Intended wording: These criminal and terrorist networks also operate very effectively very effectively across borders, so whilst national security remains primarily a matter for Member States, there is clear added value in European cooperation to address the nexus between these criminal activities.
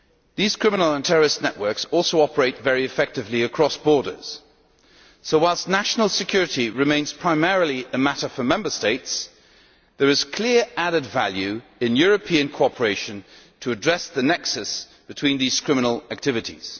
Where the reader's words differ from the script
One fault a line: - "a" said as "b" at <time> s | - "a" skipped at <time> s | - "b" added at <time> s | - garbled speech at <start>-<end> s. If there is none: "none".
- "very effectively" skipped at 3.4 s